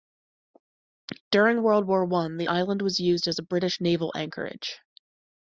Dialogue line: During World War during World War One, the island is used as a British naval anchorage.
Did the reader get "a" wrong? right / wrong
right